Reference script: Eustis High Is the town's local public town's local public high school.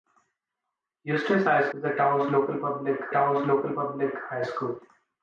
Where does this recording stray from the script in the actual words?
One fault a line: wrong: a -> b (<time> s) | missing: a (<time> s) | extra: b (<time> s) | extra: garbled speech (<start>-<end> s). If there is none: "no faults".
no faults